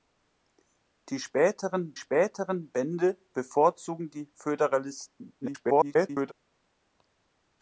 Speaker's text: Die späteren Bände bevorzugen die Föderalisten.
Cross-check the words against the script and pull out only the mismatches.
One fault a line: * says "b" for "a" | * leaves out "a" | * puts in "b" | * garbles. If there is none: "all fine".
* puts in "späteren"
* garbles